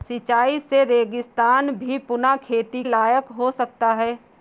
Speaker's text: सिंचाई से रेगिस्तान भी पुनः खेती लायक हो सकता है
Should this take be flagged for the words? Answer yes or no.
no